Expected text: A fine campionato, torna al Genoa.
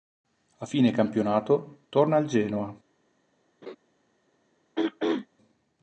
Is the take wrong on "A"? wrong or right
right